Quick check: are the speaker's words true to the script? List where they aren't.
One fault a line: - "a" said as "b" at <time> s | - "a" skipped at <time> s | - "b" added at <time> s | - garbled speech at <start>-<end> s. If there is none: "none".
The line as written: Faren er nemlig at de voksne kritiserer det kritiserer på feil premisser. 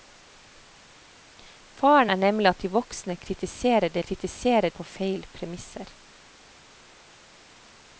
none